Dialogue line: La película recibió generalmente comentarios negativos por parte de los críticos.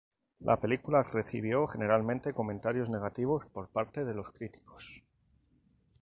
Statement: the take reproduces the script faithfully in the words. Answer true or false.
true